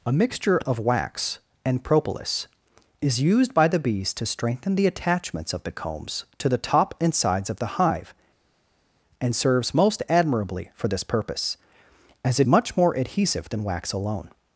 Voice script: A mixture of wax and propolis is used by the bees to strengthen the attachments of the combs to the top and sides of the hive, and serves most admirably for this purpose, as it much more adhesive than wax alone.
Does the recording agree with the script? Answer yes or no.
yes